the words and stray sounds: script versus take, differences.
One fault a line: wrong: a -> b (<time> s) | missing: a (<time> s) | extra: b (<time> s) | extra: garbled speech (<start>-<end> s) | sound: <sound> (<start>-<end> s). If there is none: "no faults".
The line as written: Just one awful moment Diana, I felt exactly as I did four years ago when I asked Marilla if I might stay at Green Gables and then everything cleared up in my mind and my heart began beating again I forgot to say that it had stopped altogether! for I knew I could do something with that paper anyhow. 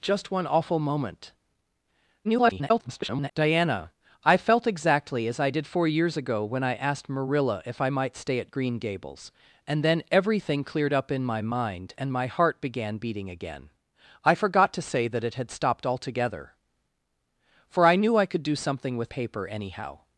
extra: garbled speech (2.2-3.3 s)
missing: that (19.1 s)